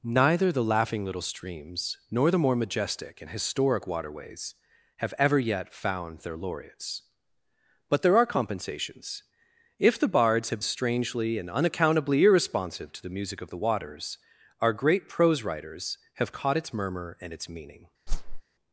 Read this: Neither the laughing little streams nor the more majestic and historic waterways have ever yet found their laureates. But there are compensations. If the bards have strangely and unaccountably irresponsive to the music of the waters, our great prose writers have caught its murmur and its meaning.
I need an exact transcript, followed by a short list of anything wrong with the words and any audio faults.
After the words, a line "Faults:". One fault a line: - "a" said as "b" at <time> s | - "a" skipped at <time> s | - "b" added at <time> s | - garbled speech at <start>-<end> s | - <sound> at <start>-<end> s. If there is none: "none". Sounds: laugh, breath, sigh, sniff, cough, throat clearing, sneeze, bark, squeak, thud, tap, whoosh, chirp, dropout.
Neither the laughing little streams nor the more majestic and historic waterways have ever yet found their laureates. But there are compensations. If the bards have strangely and unaccountably irresponsive to the music of the waters, our great prose writers have caught its murmur and its meaning.
Faults:
- whoosh at 18.1-18.4 s